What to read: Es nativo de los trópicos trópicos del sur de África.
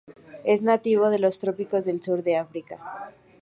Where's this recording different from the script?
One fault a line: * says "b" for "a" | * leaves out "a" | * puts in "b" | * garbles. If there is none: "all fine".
* leaves out "trópicos"